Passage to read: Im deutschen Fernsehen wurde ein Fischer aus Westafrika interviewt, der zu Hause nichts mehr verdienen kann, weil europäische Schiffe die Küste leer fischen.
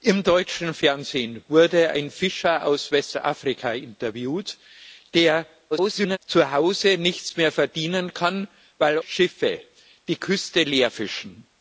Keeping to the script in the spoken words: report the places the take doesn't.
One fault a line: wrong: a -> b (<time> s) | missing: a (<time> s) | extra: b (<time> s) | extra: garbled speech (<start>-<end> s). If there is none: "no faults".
extra: garbled speech (5.7-6.2 s)
missing: europäische (9.0 s)